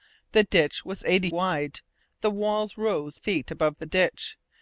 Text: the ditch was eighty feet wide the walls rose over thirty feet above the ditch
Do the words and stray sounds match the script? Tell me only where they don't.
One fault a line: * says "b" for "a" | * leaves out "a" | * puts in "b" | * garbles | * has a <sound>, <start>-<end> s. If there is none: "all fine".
* leaves out "feet"
* leaves out "over thirty"